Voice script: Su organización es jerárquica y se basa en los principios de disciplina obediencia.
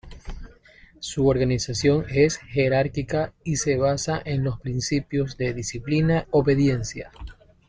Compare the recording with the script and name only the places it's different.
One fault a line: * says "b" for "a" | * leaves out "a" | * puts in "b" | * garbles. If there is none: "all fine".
all fine